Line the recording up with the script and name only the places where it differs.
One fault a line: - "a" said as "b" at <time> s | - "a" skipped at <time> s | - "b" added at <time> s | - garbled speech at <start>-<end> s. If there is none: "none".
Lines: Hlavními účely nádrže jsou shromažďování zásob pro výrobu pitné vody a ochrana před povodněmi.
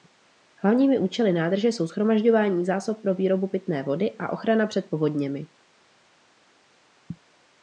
none